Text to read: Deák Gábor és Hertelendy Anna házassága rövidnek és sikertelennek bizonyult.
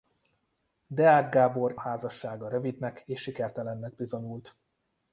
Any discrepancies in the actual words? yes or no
yes